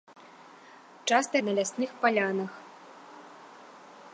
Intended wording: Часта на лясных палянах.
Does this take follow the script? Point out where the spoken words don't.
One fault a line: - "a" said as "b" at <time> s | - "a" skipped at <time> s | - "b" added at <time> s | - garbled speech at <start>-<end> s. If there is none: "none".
none